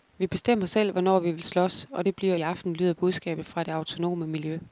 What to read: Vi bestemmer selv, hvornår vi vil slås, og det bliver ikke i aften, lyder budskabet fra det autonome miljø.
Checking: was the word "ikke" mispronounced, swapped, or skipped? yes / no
yes